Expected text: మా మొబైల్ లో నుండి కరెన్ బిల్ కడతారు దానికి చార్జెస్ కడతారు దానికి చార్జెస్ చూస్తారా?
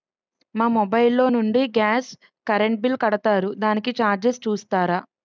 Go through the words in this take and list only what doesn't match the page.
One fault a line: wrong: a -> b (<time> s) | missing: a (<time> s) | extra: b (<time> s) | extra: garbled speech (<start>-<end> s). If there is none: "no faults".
extra: గాస్ (1.8 s)
missing: కడతారు దానికి చార్జెస్ (4.4 s)